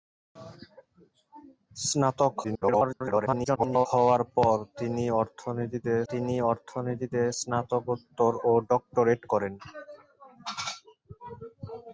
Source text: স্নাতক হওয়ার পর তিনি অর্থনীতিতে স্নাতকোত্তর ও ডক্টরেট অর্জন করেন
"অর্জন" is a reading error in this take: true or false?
true